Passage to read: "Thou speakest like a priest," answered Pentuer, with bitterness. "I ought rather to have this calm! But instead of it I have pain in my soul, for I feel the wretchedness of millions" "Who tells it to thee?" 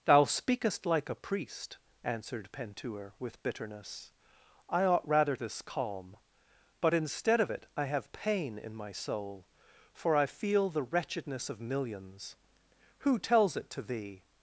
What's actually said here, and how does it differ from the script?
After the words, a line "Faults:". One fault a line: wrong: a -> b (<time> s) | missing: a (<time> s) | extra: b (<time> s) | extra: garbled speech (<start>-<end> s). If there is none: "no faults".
"Thou speakest like a priest," answered Pentuer, with bitterness. "I ought rather this calm! But instead of it I have pain in my soul, for I feel the wretchedness of millions" "Who tells it to thee?"
Faults:
missing: to have (5.3 s)